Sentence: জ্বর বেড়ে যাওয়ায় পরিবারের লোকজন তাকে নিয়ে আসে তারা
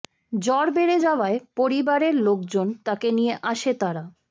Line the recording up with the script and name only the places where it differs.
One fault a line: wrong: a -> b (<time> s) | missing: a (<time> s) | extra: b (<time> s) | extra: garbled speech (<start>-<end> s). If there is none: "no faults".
no faults